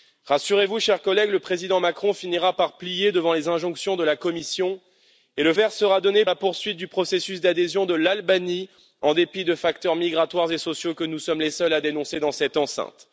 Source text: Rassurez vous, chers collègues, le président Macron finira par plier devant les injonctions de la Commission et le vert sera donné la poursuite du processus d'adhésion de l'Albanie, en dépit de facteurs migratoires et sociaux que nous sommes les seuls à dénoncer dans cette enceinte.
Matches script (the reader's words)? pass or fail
pass